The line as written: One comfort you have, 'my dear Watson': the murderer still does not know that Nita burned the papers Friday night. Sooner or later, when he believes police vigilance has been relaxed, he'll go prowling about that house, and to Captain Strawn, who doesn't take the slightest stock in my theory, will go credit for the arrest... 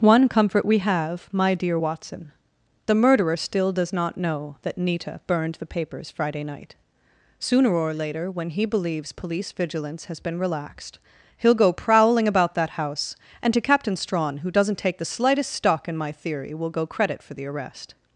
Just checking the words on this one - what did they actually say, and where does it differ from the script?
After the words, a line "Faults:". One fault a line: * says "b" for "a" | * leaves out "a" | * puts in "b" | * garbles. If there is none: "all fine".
One comfort we have, 'my dear Watson': the murderer still does not know that Nita burned the papers Friday night. Sooner or later, when he believes police vigilance has been relaxed, he'll go prowling about that house, and to Captain Strawn, who doesn't take the slightest stock in my theory, will go credit for the arrest...
Faults:
* says "we" for "you"